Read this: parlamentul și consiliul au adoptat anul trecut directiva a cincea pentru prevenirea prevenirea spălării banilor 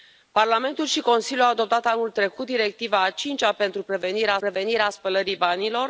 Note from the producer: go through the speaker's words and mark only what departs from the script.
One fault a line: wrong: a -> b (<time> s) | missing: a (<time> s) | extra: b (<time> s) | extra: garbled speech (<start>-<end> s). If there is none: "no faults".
no faults